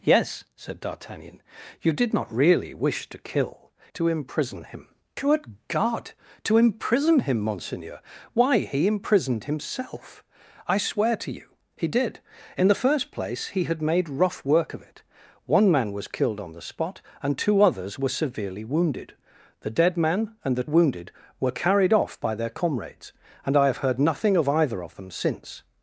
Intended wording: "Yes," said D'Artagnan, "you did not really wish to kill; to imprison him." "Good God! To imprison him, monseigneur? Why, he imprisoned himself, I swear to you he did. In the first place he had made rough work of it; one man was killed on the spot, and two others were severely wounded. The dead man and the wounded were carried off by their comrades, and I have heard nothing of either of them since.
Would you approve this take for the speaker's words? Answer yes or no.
yes